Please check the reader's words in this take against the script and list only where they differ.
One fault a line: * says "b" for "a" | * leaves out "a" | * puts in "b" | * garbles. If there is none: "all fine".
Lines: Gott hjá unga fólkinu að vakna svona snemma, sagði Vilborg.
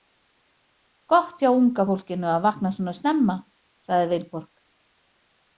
all fine